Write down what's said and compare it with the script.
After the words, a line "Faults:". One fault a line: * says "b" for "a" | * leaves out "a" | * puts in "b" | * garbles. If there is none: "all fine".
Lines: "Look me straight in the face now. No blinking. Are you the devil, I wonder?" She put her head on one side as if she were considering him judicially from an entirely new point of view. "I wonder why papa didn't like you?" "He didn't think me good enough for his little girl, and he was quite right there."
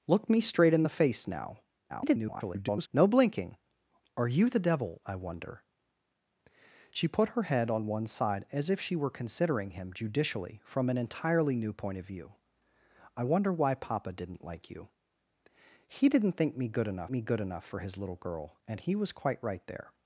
"Look me straight in the face now. [garbled] No blinking. Are you the devil, I wonder?" She put her head on one side as if she were considering him judicially from an entirely new point of view. "I wonder why papa didn't like you?" "He didn't think me good enough me good enough for his little girl, and he was quite right there."
Faults:
* garbles
* puts in "me good enough"